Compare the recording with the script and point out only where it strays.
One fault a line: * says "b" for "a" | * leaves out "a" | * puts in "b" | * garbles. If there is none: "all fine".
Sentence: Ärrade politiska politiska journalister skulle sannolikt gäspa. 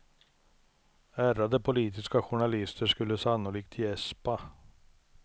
* leaves out "politiska"